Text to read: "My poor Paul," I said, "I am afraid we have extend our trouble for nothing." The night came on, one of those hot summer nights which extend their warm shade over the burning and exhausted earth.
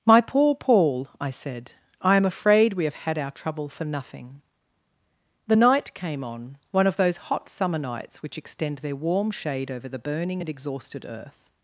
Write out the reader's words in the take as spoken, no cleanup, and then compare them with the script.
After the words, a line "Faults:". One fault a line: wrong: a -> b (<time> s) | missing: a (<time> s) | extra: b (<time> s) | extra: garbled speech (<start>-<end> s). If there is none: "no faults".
"My poor Paul," I said, "I am afraid we have had our trouble for nothing." The night came on, one of those hot summer nights which extend their warm shade over the burning and exhausted earth.
Faults:
wrong: extend -> had (3.0 s)